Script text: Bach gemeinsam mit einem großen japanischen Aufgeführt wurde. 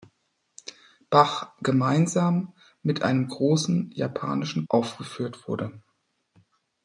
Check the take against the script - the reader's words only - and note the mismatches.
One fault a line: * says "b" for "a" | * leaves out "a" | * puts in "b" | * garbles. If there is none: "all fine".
all fine